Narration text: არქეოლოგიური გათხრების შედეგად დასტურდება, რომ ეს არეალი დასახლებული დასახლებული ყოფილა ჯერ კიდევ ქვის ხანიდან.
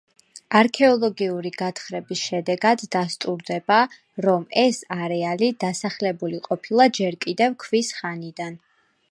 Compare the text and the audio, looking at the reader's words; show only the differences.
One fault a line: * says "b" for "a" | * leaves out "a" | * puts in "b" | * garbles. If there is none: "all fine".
* leaves out "დასახლებული"